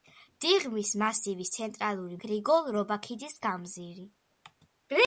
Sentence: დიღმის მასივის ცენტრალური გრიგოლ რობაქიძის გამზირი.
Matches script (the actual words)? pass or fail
pass